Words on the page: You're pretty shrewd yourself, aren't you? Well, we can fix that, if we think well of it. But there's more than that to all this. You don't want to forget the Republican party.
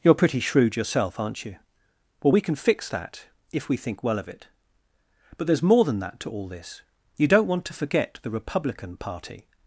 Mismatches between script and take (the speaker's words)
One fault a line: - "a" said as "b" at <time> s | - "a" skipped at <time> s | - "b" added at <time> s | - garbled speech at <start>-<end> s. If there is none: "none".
none